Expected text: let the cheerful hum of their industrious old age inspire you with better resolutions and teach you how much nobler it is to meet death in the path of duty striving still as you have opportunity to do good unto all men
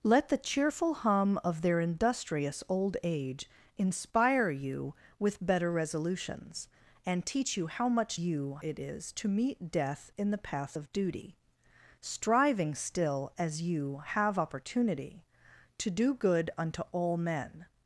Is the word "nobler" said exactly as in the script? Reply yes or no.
no